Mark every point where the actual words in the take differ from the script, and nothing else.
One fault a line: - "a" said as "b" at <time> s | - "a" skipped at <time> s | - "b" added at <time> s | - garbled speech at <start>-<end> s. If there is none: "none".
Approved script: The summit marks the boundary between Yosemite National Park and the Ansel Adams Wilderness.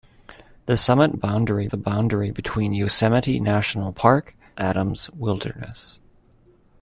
- "marks" said as "boundary" at 1.1 s
- "and the Ansel" skipped at 4.4 s